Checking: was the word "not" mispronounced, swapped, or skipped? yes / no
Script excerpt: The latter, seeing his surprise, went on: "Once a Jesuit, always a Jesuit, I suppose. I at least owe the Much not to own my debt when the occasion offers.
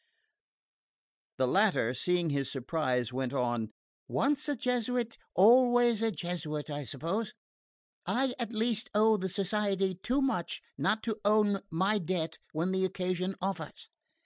no